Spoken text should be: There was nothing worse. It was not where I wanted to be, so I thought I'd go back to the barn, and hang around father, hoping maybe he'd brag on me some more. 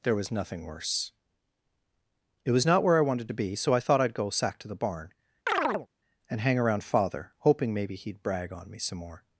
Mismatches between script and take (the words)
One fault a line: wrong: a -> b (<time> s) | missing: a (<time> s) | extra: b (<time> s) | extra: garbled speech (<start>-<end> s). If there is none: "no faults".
wrong: back -> sack (4.3 s)